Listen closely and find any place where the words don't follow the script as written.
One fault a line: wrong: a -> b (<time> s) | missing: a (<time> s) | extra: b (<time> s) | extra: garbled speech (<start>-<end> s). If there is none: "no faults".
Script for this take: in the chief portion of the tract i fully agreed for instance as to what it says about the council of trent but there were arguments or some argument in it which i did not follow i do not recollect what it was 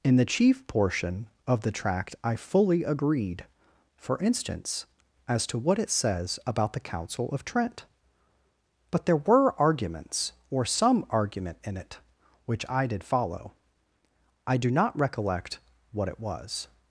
missing: not (13.0 s)